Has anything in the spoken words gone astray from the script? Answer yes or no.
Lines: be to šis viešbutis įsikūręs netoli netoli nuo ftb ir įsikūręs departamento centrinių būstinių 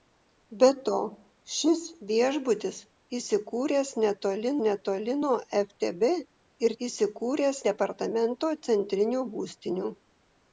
no